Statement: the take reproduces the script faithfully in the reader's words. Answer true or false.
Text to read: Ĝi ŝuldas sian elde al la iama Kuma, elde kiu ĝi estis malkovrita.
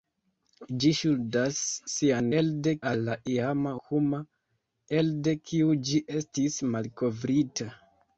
true